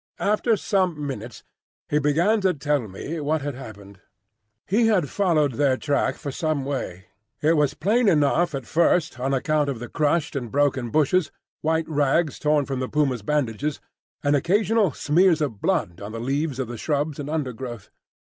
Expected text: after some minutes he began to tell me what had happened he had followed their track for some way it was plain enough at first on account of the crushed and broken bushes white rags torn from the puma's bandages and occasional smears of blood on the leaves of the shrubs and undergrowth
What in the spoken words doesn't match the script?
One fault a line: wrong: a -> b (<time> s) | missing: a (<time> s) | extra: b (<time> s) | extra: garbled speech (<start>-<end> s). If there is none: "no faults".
no faults